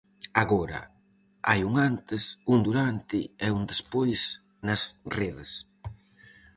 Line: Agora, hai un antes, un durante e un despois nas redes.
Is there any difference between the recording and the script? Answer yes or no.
no